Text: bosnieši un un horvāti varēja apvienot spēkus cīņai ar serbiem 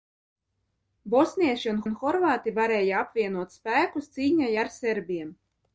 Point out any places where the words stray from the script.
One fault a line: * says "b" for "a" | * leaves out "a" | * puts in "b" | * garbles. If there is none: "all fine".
all fine